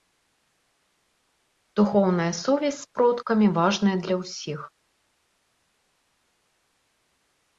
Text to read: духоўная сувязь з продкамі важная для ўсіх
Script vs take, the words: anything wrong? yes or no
no